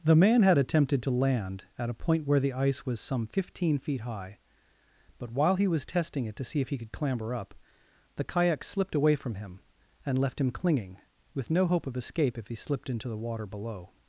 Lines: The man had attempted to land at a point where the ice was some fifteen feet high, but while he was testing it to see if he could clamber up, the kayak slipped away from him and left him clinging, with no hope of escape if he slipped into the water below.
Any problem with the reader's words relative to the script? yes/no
no